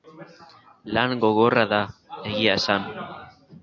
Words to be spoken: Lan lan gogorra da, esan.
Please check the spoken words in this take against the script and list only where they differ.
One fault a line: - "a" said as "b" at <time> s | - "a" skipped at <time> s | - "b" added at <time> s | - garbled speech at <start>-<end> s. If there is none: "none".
- "lan" skipped at 1.1 s
- "egia" added at 2.4 s